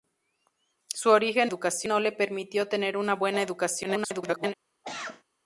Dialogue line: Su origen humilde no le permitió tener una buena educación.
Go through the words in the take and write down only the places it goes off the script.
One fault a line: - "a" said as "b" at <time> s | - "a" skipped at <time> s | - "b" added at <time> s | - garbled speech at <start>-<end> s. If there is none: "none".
- "humilde" said as "educación" at 1.4 s
- garbled speech at 3.8-4.5 s